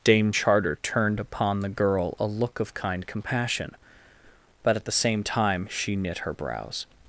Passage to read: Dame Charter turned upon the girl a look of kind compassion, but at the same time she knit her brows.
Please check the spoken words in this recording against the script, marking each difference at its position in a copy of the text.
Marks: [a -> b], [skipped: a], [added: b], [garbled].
Dame Charter turned upon the girl a look of kind compassion, but at the same time she knit her brows.